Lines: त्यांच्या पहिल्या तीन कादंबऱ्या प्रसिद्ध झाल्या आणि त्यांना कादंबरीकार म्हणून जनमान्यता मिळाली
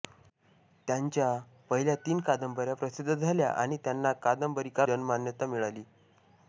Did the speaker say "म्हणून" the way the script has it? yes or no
no